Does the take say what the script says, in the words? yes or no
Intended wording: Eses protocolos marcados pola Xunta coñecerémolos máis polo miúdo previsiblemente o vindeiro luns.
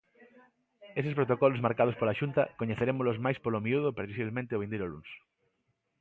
yes